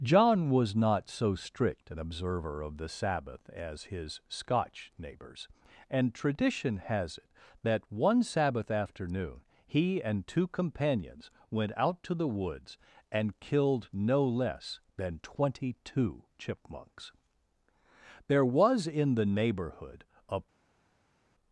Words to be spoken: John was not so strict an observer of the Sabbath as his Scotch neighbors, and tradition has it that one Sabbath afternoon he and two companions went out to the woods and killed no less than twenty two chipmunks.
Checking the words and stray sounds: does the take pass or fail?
fail